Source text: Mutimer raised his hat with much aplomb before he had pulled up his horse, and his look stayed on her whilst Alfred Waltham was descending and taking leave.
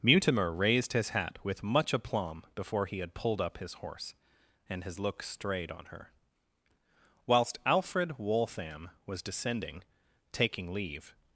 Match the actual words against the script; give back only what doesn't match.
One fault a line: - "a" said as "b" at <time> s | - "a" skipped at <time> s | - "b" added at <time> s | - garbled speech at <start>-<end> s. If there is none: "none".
- "stayed" said as "strayed" at 5.2 s
- "and" skipped at 9.8 s